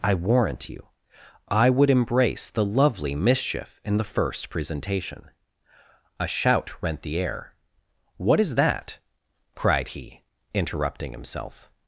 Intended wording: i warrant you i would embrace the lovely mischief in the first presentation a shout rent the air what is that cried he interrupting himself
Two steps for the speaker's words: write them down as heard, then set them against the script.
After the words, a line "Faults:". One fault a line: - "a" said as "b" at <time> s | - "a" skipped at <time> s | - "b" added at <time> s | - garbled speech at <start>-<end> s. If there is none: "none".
i warrant you i would embrace the lovely mischief in the first presentation a shout rent the air what is that cried he interrupting himself
Faults:
none